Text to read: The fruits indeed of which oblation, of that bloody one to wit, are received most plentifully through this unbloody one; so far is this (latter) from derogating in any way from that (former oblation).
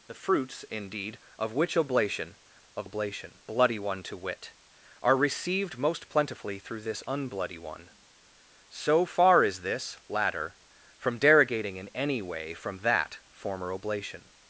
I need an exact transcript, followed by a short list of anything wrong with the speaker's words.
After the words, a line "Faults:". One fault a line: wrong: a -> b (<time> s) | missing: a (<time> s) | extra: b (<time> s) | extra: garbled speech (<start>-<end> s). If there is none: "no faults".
The fruits indeed of which oblation, of oblation bloody one to wit, are received most plentifully through this unbloody one; so far is this (latter) from derogating in any way from that (former oblation).
Faults:
wrong: that -> oblation (2.8 s)